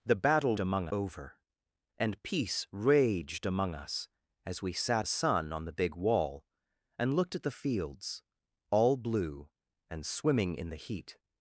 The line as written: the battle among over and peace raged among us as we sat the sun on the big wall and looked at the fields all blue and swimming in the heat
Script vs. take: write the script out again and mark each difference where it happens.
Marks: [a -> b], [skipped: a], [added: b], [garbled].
the battle among over and peace raged among us as we sat the sun on the big wall and looked at the fields all blue and swimming in the heat